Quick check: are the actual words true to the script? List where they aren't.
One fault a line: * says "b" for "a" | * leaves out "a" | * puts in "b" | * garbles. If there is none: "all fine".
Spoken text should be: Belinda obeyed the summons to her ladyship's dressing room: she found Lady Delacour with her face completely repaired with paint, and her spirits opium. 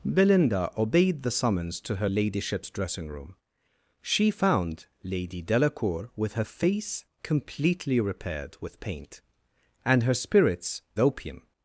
all fine